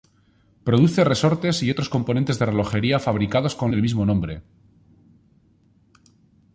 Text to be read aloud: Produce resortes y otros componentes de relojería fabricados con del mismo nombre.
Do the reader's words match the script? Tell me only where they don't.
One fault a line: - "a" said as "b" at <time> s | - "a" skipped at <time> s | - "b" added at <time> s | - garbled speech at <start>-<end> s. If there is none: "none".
none